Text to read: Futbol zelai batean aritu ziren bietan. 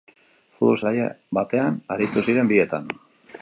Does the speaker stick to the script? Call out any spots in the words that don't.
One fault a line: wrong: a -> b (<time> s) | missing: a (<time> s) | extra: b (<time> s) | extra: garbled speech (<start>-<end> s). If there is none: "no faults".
no faults